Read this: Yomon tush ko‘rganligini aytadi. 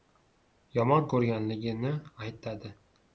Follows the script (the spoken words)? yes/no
no